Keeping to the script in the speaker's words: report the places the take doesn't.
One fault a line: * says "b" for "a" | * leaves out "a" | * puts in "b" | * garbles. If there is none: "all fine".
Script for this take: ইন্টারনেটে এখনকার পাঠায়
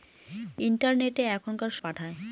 all fine